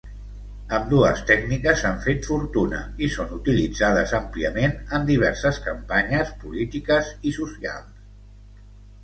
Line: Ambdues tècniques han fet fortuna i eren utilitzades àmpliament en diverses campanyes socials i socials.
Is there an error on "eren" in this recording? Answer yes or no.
yes